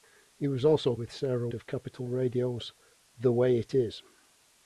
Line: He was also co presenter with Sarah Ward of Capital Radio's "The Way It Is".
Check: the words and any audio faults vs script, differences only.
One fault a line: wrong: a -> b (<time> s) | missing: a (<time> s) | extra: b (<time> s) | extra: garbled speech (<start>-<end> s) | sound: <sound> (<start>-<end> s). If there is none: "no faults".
missing: co presenter (0.9 s)
missing: Ward (1.5 s)